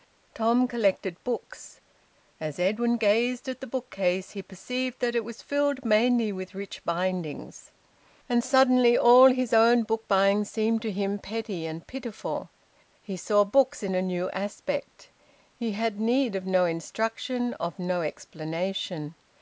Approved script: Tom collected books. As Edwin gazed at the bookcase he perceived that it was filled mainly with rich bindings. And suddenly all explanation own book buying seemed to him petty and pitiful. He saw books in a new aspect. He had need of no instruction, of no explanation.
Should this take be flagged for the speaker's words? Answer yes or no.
yes